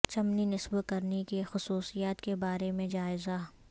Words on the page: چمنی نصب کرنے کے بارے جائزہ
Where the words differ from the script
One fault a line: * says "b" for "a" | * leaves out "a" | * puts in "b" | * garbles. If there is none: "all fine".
* puts in "کی خصوصیات"
* puts in "میں"